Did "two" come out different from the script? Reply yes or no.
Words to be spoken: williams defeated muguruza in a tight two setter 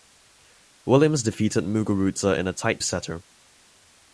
yes